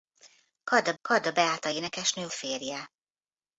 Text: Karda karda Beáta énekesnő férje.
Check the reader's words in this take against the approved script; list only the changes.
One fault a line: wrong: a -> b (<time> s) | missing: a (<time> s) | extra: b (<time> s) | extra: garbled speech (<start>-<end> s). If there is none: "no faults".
no faults